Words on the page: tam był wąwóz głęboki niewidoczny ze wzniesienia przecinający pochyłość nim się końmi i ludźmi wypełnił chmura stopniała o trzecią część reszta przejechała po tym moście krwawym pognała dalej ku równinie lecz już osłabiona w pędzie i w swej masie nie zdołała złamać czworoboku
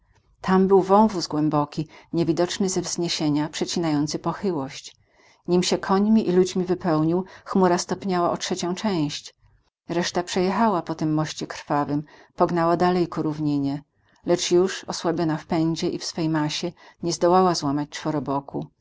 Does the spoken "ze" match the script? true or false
true